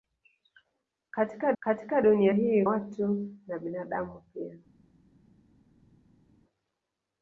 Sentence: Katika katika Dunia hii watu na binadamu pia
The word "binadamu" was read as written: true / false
true